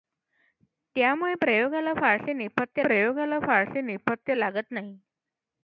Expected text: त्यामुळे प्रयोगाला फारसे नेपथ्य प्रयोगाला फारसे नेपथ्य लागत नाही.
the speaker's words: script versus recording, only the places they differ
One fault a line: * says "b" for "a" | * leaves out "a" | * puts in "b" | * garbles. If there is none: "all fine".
all fine